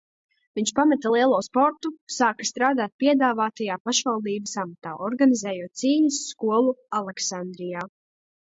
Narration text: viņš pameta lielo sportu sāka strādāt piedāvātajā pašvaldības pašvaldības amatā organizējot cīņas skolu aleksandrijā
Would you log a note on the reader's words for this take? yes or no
yes